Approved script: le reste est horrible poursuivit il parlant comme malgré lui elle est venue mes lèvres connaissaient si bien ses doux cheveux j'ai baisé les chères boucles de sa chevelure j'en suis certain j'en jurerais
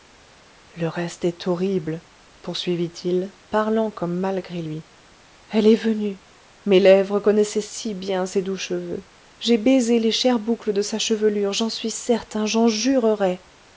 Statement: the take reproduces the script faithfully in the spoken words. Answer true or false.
true